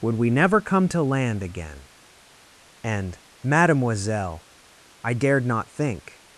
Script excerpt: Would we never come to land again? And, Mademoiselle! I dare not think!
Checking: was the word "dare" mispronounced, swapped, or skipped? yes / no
yes